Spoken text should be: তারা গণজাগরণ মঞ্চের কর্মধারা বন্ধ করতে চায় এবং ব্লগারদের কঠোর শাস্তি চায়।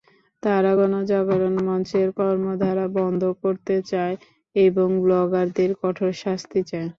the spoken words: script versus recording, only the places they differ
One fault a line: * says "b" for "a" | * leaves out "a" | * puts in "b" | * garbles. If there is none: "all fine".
all fine